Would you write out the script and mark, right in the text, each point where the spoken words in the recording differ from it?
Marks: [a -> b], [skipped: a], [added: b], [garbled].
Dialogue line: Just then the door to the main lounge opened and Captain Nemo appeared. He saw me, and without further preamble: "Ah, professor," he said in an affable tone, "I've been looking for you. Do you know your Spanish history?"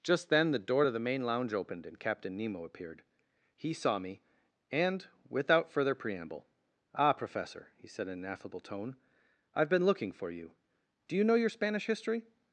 Just then the door to the main lounge opened and Captain Nemo appeared. He saw me, and without further preamble: "Ah, professor," he said in an affable tone, "I've been looking for you. Do you know your Spanish history?"